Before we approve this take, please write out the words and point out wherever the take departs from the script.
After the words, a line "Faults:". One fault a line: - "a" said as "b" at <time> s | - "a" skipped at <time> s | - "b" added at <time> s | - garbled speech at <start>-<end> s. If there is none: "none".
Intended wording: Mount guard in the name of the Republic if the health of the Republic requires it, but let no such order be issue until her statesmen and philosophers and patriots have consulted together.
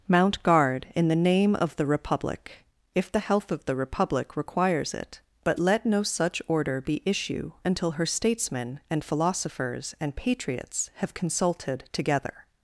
Mount guard in the name of the Republic if the health of the Republic requires it, but let no such order be issue until her statesmen and philosophers and patriots have consulted together.
Faults:
none